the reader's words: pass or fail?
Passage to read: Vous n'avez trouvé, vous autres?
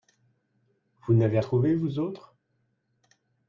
pass